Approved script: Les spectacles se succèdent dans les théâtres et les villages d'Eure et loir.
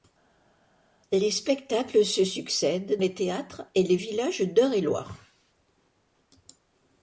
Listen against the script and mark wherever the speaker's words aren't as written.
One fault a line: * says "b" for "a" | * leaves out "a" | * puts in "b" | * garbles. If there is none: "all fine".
* leaves out "dans"